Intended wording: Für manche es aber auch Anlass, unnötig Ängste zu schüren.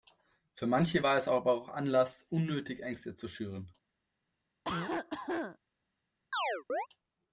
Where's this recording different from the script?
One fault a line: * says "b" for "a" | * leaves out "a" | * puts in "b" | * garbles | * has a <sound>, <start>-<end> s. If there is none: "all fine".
* puts in "war"
* has a cough, 4.6-5.6 s
* has a chirp, 6.3-6.9 s